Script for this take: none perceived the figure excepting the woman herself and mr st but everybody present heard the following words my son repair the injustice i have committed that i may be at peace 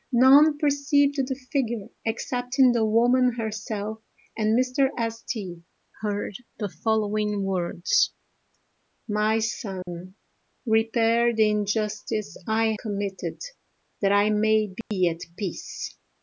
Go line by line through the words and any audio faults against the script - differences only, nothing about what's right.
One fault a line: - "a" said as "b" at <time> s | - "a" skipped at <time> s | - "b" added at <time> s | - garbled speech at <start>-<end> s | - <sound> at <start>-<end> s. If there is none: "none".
- "but everybody present" skipped at 5.6 s
- dropout at 9.8-9.9 s
- "have" skipped at 12.7 s
- dropout at 14.8-14.9 s